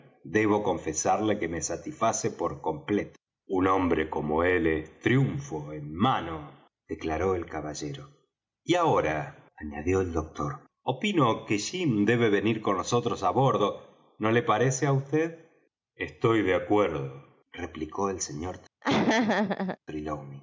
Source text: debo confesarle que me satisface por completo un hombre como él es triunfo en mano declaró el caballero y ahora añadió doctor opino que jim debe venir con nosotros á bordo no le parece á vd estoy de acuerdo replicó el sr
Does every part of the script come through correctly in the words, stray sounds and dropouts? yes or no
no